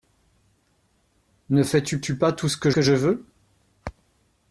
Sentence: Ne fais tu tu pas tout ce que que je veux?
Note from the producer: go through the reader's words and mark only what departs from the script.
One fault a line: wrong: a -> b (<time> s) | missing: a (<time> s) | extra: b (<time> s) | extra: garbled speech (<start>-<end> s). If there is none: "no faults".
no faults